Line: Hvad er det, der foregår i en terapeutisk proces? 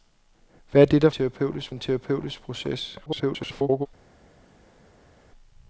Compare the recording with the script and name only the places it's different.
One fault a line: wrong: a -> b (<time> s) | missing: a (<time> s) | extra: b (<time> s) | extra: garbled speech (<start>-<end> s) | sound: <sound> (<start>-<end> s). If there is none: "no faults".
wrong: foregår -> terapeutisk (1.1 s)
extra: garbled speech (3.1-3.9 s)